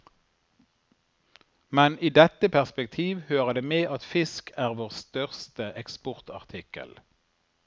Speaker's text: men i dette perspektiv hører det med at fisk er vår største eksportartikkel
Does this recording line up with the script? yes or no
yes